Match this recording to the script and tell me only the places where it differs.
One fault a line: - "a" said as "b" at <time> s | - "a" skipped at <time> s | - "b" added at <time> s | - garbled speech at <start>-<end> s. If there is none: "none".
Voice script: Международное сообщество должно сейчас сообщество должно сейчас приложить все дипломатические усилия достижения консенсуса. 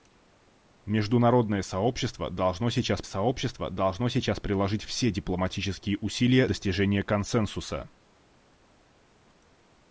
none